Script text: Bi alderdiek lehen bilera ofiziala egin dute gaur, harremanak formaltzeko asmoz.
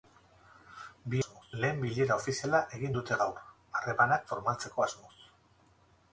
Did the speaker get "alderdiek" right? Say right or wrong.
wrong